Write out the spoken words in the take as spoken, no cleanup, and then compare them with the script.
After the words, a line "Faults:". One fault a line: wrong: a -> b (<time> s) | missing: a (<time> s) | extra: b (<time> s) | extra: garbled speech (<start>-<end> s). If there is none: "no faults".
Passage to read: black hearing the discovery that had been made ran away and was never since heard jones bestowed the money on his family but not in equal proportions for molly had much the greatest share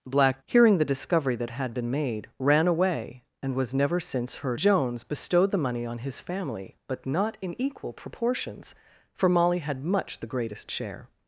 black hearing the discovery that had been made ran away and was never since heard jones bestowed the money on his family but not in equal proportions for molly had much the greatest share
Faults:
no faults